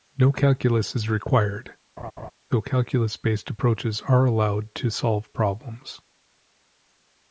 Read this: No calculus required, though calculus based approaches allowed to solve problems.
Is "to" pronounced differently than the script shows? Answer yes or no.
no